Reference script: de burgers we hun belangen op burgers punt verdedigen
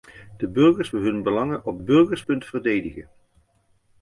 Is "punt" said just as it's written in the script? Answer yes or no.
yes